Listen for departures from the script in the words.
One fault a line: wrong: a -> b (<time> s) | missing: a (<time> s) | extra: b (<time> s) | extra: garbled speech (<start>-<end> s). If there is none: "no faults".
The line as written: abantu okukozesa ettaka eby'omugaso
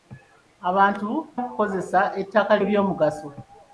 no faults